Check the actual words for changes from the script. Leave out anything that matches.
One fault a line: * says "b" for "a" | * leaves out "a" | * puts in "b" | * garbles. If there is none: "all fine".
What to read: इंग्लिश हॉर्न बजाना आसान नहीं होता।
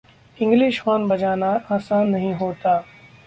all fine